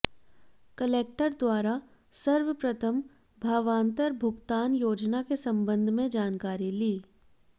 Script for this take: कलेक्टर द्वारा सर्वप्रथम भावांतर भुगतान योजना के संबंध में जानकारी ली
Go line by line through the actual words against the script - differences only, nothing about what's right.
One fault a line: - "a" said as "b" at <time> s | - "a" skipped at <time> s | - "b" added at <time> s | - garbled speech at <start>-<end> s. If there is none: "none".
none